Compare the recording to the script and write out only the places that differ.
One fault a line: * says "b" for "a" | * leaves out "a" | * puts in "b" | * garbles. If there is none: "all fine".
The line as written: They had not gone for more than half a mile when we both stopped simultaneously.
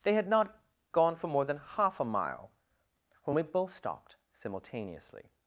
all fine